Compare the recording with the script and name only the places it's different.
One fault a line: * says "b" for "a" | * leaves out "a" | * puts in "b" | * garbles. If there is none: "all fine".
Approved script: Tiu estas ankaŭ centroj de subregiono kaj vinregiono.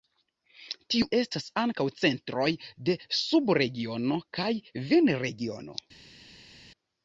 all fine